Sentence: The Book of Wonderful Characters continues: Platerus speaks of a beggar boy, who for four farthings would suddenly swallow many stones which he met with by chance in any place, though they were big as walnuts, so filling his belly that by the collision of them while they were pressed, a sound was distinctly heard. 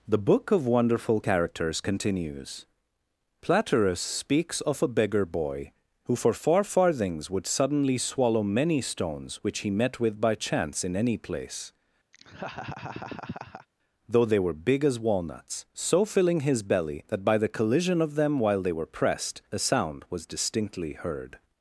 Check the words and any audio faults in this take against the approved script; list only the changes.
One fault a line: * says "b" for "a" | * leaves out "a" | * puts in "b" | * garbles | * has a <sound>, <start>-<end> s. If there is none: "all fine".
* has a laugh, 12.1-13.7 s